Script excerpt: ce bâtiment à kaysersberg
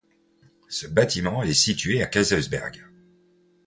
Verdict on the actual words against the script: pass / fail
fail